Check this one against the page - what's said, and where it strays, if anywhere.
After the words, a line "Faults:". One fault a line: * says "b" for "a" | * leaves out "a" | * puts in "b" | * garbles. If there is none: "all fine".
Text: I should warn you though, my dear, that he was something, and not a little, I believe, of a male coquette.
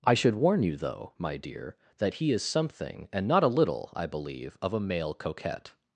I should warn you though, my dear, that he is something, and not a little, I believe, of a male coquette.
Faults:
* says "is" for "was"